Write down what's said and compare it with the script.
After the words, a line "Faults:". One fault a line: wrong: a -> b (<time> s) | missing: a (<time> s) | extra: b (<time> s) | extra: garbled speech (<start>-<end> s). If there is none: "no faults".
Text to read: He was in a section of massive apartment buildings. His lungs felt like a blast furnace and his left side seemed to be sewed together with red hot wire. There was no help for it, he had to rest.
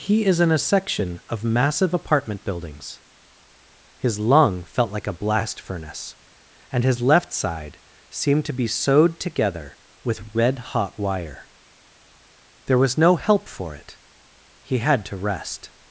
He is in a section of massive apartment buildings. His lung felt like a blast furnace and his left side seemed to be sewed together with red hot wire. There was no help for it, he had to rest.
Faults:
wrong: was -> is (0.2 s)
wrong: lungs -> lung (4.2 s)